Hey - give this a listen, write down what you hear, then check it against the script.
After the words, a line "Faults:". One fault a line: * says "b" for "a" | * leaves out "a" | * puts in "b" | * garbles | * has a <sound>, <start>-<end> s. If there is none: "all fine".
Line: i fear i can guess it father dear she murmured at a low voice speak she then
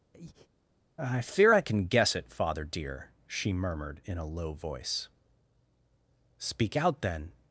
i fear i can guess it father dear she murmured in a low voice speak out then
Faults:
* has a breath, 0.1-0.5 s
* says "in" for "at"
* says "out" for "she"